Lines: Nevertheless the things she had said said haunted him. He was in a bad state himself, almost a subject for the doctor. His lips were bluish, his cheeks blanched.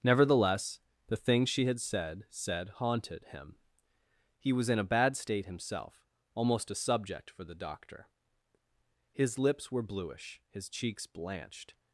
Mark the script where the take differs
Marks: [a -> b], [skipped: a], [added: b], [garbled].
Nevertheless the things she had said said haunted him. He was in a bad state himself, almost a subject for the doctor. His lips were bluish, his cheeks blanched.